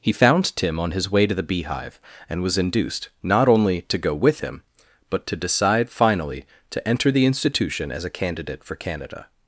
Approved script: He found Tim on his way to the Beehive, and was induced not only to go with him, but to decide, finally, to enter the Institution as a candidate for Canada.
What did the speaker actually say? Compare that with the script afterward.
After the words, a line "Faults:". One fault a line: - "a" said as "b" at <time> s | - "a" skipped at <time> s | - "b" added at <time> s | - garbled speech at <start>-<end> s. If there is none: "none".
He found Tim on his way to the Beehive, and was induced not only to go with him, but to decide, finally, to enter the Institution as a candidate for Canada.
Faults:
none